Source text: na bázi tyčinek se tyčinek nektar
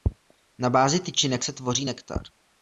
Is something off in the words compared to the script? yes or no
yes